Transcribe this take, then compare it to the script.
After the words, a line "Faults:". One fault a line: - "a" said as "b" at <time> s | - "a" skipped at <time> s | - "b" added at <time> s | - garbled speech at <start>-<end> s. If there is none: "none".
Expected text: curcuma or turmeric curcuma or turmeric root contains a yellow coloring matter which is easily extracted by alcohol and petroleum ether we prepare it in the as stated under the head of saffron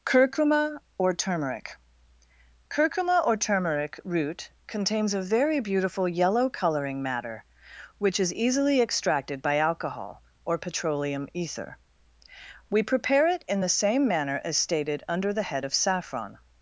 curcuma or turmeric curcuma or turmeric root contains a very beautiful yellow coloring matter which is easily extracted by alcohol or petroleum ether we prepare it in the same manner as stated under the head of saffron
Faults:
- "very beautiful" added at 5.2 s
- "and" said as "or" at 10.4 s
- "same manner" added at 13.7 s